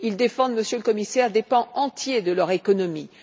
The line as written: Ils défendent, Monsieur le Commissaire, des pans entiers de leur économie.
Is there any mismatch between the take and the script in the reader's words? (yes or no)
no